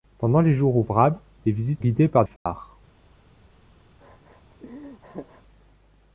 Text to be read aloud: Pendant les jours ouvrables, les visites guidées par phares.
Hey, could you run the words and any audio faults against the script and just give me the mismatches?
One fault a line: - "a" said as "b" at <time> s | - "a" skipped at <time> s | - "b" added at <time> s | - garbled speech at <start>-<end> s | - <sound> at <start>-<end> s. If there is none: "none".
- dropout at 2.4-2.5 s
- laugh at 4.0-5.4 s